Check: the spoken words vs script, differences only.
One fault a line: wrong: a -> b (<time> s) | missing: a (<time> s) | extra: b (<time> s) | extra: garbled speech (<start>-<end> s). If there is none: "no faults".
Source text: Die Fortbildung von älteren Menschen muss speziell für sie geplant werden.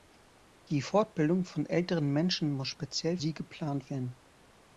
missing: für (3.2 s)